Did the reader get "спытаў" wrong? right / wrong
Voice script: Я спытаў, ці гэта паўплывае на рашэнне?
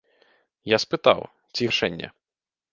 right